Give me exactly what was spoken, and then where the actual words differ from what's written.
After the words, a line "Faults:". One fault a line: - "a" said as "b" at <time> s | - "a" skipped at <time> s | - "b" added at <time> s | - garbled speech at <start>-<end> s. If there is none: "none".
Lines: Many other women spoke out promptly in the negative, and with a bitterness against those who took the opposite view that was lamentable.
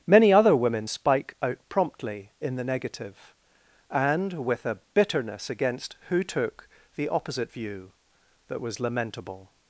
Many other women spike out promptly in the negative, and with a bitterness against who took the opposite view that was lamentable.
Faults:
- "spoke" said as "spike" at 0.8 s
- "those" skipped at 6.0 s